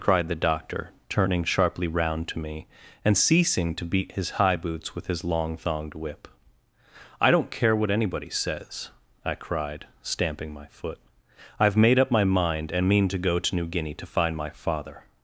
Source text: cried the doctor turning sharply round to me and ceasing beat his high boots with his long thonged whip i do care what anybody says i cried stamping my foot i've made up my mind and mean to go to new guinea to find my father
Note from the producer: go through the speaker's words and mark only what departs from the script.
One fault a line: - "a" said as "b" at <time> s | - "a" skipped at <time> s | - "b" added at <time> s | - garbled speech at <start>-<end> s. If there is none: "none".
- "to" added at 3.8 s
- "do" said as "don't" at 7.3 s